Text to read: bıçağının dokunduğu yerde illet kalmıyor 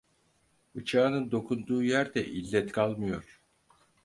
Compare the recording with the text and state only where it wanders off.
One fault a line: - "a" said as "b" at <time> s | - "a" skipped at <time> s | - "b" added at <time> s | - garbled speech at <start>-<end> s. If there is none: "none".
none